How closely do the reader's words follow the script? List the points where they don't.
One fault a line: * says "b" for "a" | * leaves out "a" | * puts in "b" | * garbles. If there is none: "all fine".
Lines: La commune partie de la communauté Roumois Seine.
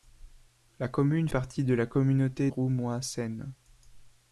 all fine